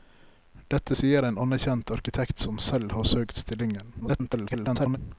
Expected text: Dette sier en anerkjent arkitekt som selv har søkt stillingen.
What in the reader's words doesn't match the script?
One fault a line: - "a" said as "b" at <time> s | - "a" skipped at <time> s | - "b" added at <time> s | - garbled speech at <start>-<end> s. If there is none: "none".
- garbled speech at 4.0-5.0 s